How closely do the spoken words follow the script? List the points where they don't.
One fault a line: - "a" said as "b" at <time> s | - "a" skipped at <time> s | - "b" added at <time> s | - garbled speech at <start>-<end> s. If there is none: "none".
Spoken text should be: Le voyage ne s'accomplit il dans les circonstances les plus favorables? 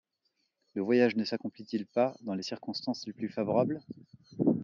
- "pas" added at 1.9 s